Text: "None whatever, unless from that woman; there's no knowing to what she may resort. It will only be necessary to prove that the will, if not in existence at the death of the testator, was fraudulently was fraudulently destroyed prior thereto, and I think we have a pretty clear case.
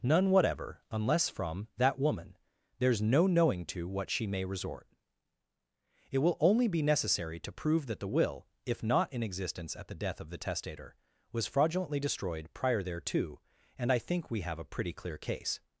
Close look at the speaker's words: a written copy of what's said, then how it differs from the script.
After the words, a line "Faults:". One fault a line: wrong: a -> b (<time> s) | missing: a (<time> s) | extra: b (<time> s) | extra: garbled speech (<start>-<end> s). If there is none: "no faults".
"None whatever, unless from that woman; there's no knowing to what she may resort. It will only be necessary to prove that the will, if not in existence at the death of the testator, was fraudulently destroyed prior thereto, and I think we have a pretty clear case.
Faults:
missing: was fraudulently (12.0 s)